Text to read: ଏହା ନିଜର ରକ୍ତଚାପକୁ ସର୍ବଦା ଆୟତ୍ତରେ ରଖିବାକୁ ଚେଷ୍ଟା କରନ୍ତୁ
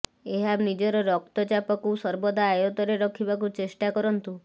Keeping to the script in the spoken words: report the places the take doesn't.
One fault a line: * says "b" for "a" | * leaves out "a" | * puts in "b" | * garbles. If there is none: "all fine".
all fine